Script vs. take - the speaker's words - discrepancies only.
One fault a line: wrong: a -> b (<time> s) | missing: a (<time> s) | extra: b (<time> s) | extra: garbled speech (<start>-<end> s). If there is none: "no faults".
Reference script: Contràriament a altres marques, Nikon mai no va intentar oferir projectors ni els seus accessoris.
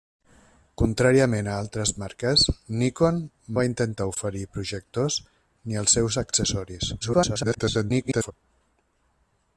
missing: mai no (3.2 s)
extra: garbled speech (7.0-8.3 s)